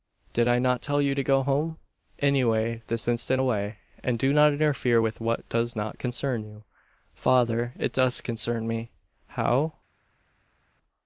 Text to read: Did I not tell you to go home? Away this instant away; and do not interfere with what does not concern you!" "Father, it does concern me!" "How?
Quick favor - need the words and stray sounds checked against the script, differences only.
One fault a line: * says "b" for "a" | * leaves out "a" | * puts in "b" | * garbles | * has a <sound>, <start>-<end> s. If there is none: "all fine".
all fine